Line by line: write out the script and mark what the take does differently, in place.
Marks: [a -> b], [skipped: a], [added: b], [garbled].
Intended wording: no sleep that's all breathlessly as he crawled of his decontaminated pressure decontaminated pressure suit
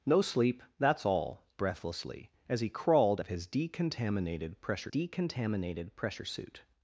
no sleep that's all breathlessly as he crawled of his decontaminated pressure decontaminated pressure suit